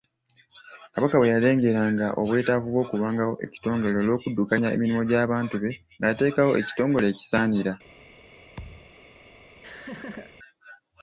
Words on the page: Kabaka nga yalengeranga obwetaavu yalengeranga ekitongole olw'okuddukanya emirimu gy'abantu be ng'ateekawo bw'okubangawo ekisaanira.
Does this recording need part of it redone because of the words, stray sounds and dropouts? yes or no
yes